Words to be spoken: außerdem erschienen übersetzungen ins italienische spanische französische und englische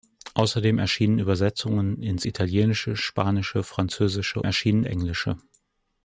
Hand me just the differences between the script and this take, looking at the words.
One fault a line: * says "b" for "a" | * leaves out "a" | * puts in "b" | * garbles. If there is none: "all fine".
* says "erschienen" for "und"